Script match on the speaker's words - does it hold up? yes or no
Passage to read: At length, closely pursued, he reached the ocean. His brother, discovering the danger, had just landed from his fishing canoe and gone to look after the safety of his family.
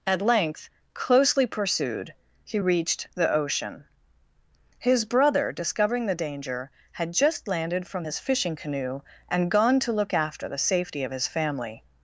yes